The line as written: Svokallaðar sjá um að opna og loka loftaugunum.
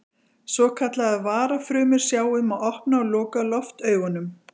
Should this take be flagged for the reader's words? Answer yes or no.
yes